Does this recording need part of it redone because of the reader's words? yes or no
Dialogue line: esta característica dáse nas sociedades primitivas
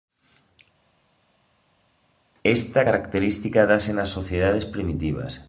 no